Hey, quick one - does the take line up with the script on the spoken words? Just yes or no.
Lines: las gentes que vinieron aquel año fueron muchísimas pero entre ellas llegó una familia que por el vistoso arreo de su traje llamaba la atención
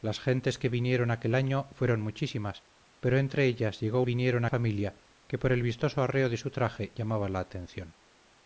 no